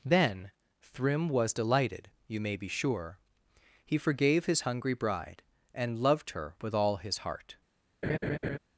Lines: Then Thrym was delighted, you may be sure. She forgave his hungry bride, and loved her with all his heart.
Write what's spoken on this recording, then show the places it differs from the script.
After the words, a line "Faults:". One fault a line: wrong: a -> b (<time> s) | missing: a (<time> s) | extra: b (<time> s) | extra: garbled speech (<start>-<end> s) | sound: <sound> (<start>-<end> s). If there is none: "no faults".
Then Thrym was delighted, you may be sure. He forgave his hungry bride, and loved her with all his heart.
Faults:
wrong: She -> He (3.8 s)
sound: laugh (8.0-8.6 s)